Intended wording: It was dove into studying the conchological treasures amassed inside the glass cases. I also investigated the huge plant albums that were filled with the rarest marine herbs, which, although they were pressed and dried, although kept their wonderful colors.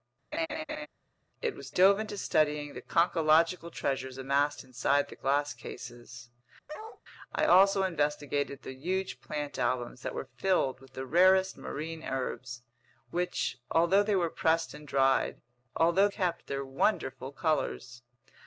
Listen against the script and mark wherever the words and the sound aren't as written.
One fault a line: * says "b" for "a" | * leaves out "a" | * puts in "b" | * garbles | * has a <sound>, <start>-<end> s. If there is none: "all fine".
* has a laugh, 0.3-0.9 s
* has a bark, 6.7-7.0 s